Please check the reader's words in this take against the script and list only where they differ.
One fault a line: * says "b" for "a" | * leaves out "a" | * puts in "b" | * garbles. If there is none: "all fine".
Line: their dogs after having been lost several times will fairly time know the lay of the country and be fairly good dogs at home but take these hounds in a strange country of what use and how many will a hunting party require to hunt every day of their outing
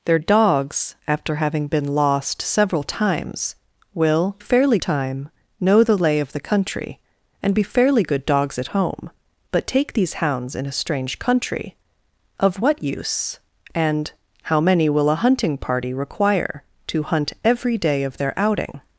all fine